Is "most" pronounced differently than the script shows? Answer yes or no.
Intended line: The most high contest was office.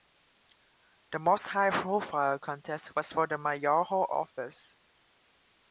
no